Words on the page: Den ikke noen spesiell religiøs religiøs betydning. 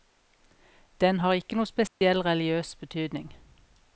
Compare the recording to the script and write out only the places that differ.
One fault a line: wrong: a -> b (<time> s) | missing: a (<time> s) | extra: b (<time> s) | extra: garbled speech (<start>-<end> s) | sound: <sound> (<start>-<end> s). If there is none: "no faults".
extra: har (1.2 s)
sound: dropout (1.9-2.0 s)
missing: religiøs (2.7 s)